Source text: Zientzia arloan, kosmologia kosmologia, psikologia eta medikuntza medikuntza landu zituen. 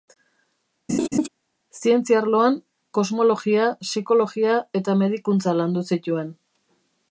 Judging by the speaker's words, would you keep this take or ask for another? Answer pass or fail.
fail